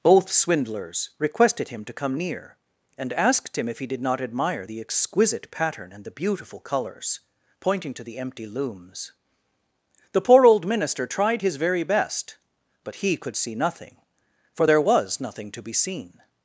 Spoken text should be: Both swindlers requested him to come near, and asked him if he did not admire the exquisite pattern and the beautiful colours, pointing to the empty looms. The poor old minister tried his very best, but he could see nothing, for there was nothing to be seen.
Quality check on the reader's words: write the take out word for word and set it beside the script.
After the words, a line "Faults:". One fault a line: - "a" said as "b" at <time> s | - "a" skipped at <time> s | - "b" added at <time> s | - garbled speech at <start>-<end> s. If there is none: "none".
Both swindlers requested him to come near, and asked him if he did not admire the exquisite pattern and the beautiful colours, pointing to the empty looms. The poor old minister tried his very best, but he could see nothing, for there was nothing to be seen.
Faults:
none